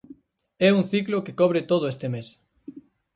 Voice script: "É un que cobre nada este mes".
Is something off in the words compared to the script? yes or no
yes